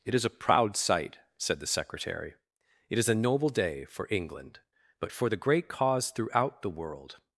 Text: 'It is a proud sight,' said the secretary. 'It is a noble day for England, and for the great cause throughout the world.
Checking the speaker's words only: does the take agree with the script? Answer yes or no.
no